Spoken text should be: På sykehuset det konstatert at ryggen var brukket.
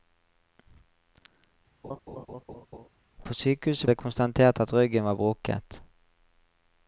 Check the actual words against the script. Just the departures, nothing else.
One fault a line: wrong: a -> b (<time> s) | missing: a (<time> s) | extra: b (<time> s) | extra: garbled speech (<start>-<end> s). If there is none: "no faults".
no faults